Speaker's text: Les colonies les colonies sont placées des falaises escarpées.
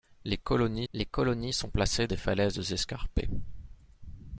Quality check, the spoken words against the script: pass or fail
pass